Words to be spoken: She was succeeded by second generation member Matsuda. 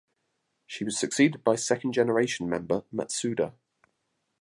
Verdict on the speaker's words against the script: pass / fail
pass